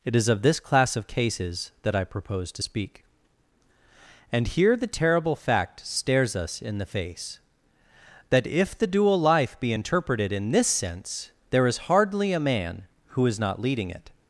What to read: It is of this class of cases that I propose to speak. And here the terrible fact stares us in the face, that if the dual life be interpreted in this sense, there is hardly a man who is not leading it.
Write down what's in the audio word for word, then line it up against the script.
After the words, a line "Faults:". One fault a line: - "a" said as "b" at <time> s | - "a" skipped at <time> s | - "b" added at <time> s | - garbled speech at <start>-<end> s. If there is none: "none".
It is of this class of cases that I propose to speak. And here the terrible fact stares us in the face, that if the dual life be interpreted in this sense, there is hardly a man who is not leading it.
Faults:
none